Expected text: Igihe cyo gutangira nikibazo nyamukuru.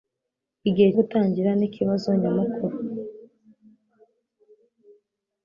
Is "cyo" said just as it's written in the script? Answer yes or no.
no